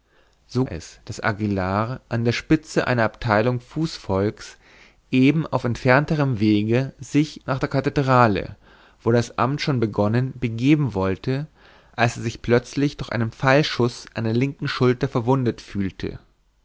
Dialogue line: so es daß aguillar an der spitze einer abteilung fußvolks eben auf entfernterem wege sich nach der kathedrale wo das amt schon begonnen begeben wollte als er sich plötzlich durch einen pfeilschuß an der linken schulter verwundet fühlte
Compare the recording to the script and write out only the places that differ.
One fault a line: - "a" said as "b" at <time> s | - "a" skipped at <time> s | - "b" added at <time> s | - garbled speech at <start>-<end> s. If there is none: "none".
none